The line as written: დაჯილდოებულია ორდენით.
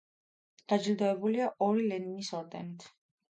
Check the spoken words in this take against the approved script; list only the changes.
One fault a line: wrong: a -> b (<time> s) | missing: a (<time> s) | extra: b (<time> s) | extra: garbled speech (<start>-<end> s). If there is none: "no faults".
extra: ორი ლენინის (1.7 s)